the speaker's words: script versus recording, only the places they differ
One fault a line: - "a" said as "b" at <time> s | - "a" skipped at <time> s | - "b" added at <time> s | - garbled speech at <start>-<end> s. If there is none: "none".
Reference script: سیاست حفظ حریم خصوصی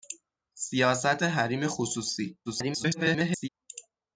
- "حفظ" skipped at 1.2 s
- garbled speech at 2.5-3.5 s